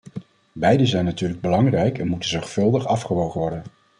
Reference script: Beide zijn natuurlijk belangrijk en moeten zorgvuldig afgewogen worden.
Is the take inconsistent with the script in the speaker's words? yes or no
no